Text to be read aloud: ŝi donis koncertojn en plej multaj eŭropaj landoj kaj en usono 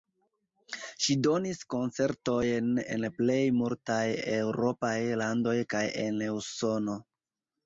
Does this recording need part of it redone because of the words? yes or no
no